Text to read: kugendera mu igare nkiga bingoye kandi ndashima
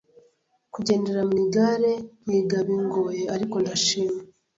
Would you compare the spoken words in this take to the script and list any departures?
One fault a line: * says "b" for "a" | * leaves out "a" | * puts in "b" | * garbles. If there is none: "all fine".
* says "ariko" for "kandi"